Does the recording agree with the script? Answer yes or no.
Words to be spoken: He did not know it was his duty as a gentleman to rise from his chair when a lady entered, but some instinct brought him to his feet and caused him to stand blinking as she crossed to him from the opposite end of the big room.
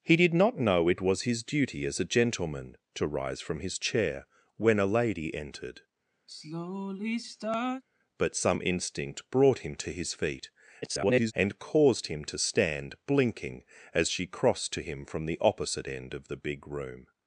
no